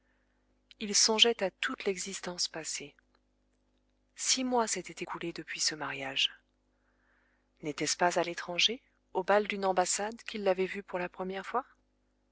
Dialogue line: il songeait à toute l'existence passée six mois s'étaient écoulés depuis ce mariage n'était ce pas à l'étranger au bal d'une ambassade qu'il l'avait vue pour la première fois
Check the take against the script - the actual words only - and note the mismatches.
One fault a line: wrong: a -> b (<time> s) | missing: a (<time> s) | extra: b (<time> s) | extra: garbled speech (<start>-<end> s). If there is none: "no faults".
no faults